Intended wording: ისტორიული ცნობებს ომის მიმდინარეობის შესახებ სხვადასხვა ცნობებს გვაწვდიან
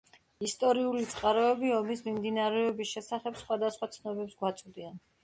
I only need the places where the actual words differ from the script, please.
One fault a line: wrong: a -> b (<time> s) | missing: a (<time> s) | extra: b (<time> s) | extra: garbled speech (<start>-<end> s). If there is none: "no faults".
wrong: ცნობებს -> წყაროები (1.1 s)